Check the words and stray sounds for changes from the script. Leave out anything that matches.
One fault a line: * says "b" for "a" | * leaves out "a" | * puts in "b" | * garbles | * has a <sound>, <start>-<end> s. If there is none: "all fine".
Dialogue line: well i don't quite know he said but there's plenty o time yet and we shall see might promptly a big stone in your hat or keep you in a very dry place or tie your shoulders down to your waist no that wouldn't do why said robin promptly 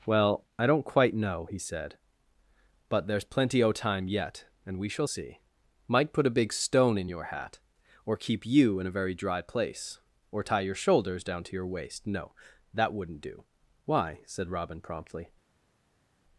* says "put" for "promptly"